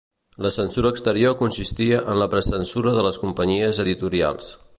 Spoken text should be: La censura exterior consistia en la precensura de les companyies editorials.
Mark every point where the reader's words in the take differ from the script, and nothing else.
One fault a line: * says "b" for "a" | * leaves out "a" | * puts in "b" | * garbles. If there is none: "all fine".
all fine